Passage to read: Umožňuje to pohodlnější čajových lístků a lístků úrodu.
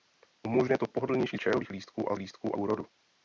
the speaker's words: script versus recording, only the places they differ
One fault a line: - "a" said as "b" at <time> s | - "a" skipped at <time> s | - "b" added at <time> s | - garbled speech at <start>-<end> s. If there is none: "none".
none